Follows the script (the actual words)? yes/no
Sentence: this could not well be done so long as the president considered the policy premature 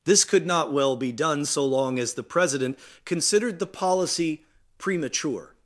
yes